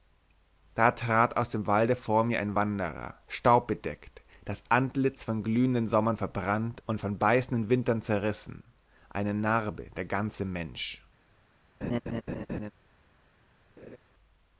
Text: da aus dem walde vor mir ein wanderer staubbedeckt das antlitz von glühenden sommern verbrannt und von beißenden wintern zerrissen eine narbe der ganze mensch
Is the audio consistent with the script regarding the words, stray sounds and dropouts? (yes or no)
no